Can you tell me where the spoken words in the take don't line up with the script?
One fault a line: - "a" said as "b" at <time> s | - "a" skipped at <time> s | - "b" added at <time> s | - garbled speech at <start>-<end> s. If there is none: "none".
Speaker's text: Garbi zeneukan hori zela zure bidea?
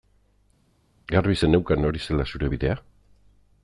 none